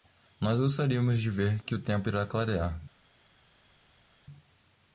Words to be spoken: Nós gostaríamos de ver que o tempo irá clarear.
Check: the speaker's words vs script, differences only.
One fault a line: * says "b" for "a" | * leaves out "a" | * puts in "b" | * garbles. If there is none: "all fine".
all fine